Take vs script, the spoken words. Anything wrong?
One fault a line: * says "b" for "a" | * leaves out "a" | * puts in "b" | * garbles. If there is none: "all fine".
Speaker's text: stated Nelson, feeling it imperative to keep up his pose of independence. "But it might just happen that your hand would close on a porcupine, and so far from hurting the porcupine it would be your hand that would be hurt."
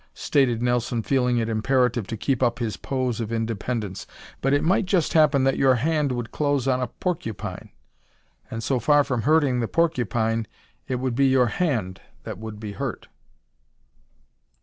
all fine